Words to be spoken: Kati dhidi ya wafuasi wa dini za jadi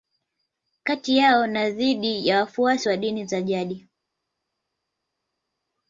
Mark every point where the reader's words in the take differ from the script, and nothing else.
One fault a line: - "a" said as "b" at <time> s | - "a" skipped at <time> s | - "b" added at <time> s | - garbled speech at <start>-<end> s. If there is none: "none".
- "yao na" added at 1.2 s